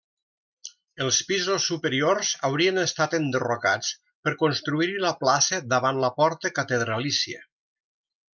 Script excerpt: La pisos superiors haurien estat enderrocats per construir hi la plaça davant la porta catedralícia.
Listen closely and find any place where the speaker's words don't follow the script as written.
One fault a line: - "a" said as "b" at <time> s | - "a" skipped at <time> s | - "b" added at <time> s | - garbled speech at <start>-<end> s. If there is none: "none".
- "La" said as "Els" at 1.0 s